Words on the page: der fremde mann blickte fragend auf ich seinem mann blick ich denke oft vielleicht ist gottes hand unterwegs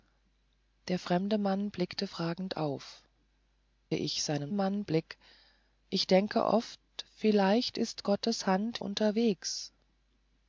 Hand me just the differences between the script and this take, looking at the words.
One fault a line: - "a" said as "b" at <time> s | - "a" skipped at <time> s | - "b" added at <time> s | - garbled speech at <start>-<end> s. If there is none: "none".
none